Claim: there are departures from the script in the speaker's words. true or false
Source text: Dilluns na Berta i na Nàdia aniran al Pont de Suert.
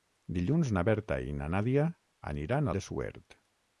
true